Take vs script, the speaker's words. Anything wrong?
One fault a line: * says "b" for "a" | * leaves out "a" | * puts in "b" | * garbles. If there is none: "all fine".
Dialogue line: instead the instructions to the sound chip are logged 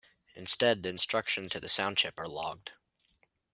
all fine